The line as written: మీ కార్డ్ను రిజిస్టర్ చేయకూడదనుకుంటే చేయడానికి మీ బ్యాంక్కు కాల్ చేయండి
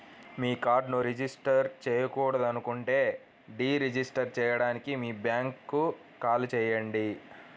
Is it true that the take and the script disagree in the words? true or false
true